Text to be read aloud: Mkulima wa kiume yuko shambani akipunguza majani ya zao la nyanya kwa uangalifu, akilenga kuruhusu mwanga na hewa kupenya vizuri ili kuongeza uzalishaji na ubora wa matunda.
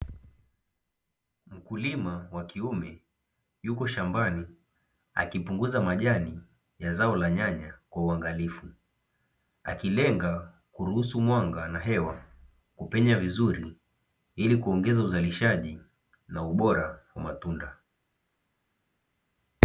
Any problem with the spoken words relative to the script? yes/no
no